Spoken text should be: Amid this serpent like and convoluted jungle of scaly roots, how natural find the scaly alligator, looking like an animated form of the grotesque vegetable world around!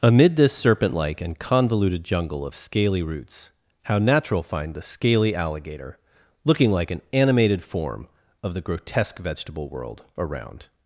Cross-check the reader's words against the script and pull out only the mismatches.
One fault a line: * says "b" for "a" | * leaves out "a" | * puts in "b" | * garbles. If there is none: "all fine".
all fine